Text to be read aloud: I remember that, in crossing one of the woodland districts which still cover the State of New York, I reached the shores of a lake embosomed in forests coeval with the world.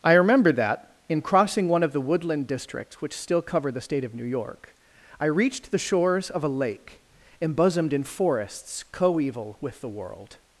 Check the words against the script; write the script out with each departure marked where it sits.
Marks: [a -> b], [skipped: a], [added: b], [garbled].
I remember that, in crossing one of the woodland districts which still cover the State of New York, I reached the shores of a lake embosomed in forests coeval with the world.